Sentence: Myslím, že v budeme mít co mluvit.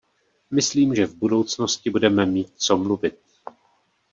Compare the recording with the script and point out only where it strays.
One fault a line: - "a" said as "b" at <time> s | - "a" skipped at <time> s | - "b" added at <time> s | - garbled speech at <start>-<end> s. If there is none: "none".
- "budoucnosti" added at 1.1 s